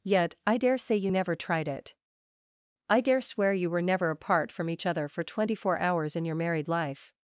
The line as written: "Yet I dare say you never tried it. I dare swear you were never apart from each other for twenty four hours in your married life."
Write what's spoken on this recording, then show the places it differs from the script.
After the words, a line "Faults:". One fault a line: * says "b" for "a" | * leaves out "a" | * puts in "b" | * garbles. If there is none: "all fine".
"Yet I dare say you never tried it. I dare swear you were never apart from each other for twenty four hours in your married life."
Faults:
all fine